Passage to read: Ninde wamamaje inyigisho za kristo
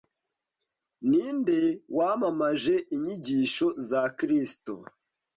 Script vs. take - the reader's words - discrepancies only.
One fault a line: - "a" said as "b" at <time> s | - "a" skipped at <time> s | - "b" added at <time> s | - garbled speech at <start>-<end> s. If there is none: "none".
none